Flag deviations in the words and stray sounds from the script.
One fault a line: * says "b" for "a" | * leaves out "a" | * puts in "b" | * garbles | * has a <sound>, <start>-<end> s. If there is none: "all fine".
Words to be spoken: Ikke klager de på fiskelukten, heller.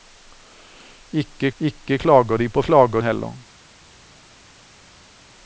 * puts in "ikke"
* says "klager" for "fiskelukten"